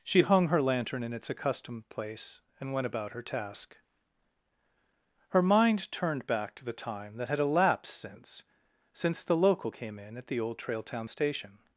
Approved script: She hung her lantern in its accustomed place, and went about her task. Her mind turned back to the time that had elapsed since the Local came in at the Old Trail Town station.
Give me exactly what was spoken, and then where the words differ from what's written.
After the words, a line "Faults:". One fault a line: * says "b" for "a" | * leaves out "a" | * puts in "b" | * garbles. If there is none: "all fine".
She hung her lantern in its accustomed place, and went about her task. Her mind turned back to the time that had elapsed since since the Local came in at the Old Trail Town station.
Faults:
* puts in "since"